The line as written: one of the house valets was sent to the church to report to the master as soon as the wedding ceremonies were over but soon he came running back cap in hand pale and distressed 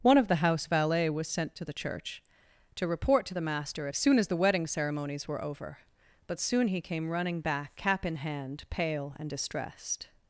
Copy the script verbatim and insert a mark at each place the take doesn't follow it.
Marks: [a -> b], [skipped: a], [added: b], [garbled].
one of the house [valets -> valet] was sent to the church to report to the master as soon as the wedding ceremonies were over but soon he came running back cap in hand pale and distressed